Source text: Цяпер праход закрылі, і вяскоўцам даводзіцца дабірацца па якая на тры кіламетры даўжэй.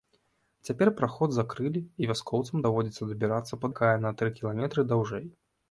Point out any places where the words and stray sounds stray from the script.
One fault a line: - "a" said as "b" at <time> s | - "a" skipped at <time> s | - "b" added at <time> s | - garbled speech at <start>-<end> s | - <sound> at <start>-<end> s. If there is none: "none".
none